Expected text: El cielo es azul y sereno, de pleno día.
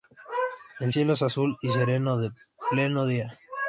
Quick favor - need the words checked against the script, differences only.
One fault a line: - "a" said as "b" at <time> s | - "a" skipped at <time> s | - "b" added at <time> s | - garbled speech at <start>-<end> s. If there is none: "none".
none